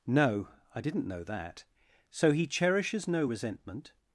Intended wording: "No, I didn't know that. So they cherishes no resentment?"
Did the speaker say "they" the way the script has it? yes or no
no